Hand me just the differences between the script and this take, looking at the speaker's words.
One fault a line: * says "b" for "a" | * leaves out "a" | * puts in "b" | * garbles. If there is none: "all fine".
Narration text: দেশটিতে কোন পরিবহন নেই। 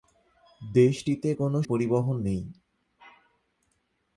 all fine